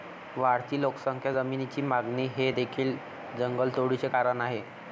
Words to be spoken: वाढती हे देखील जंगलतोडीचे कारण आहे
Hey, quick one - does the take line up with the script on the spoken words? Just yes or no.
no